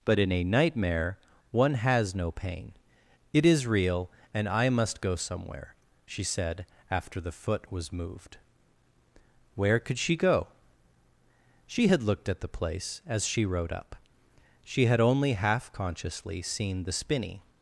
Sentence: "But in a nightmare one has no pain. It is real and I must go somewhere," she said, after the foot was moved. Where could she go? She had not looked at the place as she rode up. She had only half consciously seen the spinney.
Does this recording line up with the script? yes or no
no